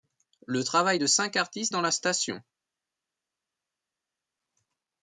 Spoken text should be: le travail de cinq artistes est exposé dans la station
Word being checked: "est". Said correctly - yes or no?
no